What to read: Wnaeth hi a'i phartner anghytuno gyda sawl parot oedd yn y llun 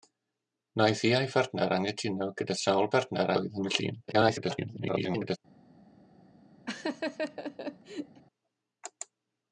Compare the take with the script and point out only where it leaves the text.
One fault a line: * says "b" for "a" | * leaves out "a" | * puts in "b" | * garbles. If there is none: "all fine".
* says "phartner" for "parot"
* garbles